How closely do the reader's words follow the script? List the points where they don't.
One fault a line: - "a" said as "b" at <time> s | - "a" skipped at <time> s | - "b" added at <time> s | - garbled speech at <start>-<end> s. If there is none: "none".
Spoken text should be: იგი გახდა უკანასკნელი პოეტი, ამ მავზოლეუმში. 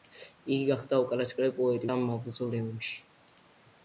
none